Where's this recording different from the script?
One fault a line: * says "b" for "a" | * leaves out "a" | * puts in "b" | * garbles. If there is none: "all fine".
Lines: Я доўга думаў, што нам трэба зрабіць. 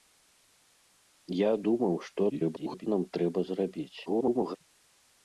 * leaves out "доўга"
* garbles
* garbles